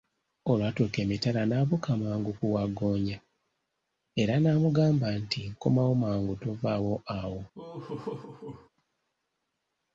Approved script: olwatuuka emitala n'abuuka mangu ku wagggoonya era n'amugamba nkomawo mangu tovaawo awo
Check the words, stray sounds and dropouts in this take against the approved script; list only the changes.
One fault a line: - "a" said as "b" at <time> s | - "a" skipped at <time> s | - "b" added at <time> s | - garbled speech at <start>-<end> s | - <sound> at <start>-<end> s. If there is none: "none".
- "nti" added at 5.2 s
- laugh at 7.5-8.7 s